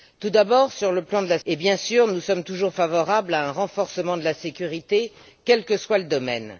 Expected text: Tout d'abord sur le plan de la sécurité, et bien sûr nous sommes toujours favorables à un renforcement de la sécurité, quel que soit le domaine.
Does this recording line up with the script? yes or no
no